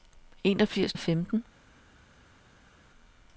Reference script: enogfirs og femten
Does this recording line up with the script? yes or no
yes